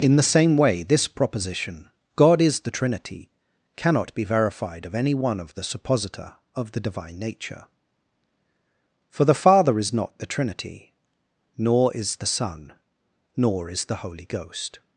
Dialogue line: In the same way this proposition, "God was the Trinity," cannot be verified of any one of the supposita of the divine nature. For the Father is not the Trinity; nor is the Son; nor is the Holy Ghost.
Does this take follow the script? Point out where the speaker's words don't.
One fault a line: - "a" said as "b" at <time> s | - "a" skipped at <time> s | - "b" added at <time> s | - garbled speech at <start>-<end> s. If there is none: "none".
- "was" said as "is" at 2.4 s